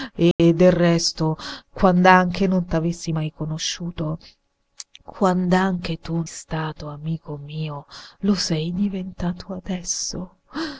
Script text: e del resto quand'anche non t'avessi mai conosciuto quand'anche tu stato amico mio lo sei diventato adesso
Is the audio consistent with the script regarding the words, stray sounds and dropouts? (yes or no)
no